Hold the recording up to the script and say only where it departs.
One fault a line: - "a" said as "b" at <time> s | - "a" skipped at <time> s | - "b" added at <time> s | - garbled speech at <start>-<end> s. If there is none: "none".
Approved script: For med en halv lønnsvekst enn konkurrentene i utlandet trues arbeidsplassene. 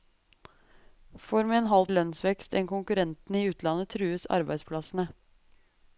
none